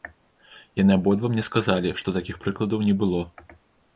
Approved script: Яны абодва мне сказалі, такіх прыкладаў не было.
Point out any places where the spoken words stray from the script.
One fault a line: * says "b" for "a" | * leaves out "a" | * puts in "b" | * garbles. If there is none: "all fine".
* puts in "што"